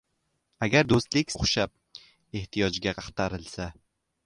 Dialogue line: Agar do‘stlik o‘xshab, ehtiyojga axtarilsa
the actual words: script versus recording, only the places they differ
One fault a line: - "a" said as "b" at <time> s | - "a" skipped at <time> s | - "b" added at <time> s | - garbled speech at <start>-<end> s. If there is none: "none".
none